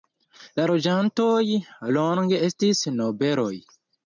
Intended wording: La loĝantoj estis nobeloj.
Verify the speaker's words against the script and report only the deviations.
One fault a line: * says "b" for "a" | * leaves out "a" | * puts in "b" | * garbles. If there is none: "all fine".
* puts in "longe"